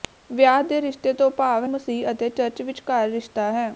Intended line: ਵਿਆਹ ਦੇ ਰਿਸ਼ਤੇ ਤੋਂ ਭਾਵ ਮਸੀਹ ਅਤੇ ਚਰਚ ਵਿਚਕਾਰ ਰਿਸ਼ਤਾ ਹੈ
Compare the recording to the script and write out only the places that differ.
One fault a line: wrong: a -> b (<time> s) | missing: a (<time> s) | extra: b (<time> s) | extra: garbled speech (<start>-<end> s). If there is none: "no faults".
no faults